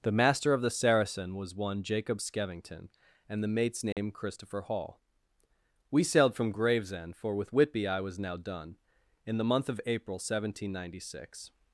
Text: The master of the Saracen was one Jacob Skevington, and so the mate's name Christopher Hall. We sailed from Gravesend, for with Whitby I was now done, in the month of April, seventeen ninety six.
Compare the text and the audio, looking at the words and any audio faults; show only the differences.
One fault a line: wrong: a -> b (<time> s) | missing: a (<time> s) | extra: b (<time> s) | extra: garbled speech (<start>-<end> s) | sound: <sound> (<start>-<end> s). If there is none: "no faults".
missing: so (3.4 s)
sound: dropout (3.9-4.0 s)